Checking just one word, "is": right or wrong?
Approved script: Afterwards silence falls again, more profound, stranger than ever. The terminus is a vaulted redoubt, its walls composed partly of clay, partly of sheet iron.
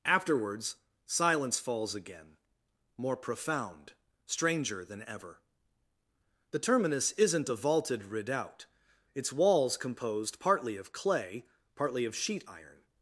wrong